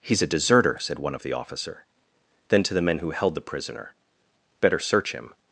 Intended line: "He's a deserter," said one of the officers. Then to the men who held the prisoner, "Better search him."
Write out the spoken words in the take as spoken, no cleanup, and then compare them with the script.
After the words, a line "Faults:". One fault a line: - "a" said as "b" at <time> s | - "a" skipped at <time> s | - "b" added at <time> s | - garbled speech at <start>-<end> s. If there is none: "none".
"He's a deserter," said one of the officer. Then to the men who held the prisoner, "Better search him."
Faults:
- "officers" said as "officer" at 1.3 s